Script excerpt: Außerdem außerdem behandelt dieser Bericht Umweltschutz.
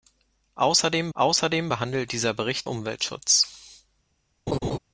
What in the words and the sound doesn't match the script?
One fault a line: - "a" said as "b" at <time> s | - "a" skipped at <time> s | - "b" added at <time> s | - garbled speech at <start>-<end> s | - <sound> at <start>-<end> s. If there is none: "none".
- laugh at 4.5-4.8 s